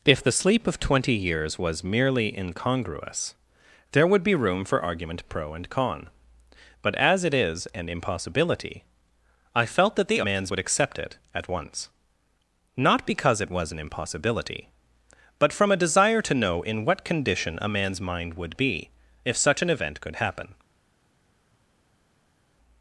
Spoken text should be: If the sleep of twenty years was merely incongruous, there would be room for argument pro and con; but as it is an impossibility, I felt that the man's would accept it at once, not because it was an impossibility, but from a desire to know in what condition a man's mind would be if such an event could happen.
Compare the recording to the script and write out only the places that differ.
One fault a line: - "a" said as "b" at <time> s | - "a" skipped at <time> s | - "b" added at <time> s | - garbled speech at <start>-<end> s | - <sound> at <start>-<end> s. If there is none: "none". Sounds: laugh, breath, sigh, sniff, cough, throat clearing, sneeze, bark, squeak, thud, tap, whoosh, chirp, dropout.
none